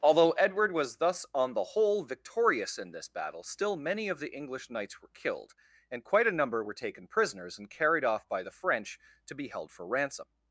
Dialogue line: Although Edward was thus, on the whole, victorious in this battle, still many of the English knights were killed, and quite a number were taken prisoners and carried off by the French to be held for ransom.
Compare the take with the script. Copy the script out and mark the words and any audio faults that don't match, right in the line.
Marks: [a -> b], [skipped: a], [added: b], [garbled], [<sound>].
Although Edward was thus, on the whole, victorious in this battle, still many of the English knights were killed, and quite a number were taken prisoners and carried off by the French to be held for ransom.